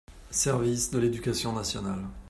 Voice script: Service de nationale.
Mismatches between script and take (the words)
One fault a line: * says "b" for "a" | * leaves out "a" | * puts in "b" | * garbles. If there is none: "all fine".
* puts in "l'éducation"